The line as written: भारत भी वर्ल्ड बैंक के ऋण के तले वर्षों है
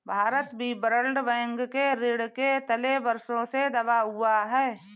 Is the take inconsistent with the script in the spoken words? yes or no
yes